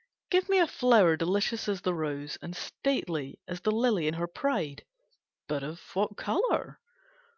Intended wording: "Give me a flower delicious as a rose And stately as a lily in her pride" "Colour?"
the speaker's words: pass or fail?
fail